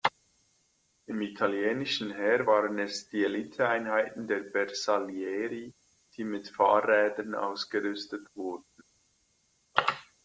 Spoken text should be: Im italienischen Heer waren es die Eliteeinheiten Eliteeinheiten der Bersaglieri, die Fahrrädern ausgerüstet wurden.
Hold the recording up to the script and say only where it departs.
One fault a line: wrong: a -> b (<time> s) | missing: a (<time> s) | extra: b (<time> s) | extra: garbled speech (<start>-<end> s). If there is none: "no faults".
missing: Eliteeinheiten (4.3 s)
extra: mit (6.2 s)